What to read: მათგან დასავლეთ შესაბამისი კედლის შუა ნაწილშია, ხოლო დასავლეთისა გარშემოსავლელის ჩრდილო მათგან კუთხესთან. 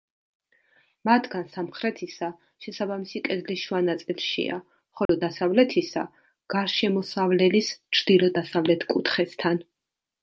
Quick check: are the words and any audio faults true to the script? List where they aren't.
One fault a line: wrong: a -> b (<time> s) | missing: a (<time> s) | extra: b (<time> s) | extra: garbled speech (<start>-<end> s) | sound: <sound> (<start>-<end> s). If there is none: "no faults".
wrong: დასავლეთ -> სამხრეთისა (1.6 s)
sound: dropout (5.1-5.1 s)
wrong: მათგან -> დასავლეთ (8.4 s)